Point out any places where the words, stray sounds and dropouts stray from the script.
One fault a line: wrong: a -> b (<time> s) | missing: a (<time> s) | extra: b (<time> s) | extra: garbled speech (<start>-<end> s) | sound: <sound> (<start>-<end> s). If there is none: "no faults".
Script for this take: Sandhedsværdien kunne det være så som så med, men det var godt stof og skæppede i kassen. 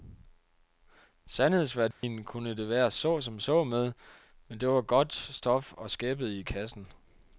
sound: dropout (1.9-2.0 s)